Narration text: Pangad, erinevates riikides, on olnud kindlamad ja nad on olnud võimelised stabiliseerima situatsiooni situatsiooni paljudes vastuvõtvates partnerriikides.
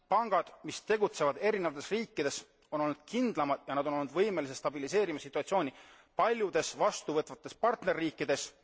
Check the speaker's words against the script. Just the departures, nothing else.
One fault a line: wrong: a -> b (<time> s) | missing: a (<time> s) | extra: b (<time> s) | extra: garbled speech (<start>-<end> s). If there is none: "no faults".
extra: mis tegutsevad (0.6 s)
missing: situatsiooni (5.7 s)